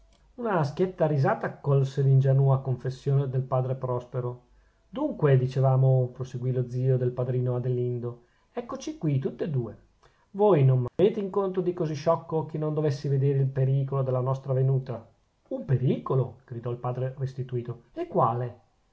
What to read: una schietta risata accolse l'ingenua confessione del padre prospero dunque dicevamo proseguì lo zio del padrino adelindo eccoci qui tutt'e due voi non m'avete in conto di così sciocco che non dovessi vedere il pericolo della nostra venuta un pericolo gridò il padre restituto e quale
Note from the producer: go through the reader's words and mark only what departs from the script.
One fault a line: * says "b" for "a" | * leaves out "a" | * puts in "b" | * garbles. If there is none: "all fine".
all fine